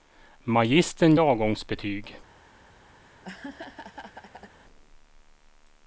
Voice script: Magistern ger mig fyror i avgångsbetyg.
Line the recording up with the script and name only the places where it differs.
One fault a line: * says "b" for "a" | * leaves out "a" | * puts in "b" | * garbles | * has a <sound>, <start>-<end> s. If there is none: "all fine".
* leaves out "ger mig fyror"
* has a laugh, 3.0-4.6 s